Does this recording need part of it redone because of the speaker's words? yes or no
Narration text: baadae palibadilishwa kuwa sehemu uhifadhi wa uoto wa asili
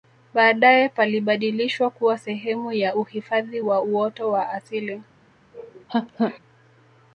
yes